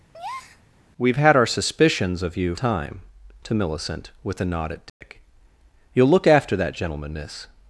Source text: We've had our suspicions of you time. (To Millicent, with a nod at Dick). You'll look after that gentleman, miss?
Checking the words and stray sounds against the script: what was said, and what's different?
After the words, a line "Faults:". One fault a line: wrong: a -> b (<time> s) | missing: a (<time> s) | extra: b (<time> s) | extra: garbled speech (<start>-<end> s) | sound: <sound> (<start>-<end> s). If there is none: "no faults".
We've had our suspicions of you time. (To Millicent, with a nod at Dick). You'll look after that gentleman, miss?
Faults:
sound: breath (0.1-0.6 s)
sound: dropout (4.9-5.0 s)